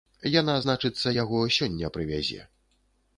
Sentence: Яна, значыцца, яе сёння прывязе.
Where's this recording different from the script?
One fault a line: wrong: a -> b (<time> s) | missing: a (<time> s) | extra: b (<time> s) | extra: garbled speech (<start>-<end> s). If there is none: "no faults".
wrong: яе -> яго (1.2 s)